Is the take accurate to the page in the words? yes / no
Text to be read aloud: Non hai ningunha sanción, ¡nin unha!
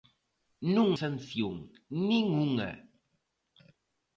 no